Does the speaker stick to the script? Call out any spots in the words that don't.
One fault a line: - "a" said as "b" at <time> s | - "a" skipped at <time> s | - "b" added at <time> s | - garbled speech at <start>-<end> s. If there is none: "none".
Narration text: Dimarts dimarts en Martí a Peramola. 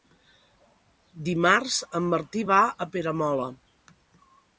- "dimarts" skipped at 1.8 s
- "va" added at 2.5 s